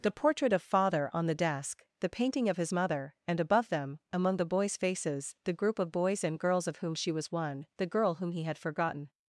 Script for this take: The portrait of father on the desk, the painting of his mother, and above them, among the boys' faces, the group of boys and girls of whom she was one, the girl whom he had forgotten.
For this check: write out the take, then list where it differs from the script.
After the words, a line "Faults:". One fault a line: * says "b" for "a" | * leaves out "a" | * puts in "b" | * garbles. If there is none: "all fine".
The portrait of father on the desk, the painting of his mother, and above them, among the boys' faces, the group of boys and girls of whom she was one, the girl whom he had forgotten.
Faults:
all fine